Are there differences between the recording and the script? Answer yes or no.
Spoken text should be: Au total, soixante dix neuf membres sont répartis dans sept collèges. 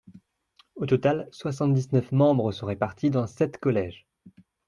no